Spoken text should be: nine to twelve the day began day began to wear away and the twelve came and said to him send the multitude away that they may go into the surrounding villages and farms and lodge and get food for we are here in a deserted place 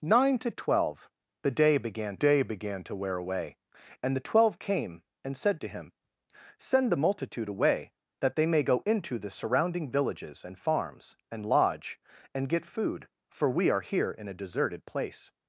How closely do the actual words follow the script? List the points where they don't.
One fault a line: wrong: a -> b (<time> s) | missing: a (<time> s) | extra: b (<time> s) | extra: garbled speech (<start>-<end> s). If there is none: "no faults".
no faults